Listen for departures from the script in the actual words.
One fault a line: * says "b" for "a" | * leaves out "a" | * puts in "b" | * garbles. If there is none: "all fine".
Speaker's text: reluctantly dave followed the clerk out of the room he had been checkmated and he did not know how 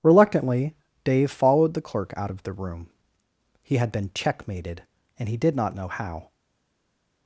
all fine